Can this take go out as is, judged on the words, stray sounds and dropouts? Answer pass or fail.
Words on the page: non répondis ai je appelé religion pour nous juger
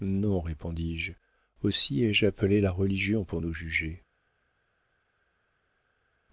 fail